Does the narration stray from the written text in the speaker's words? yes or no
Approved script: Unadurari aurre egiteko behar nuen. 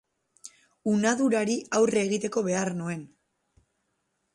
no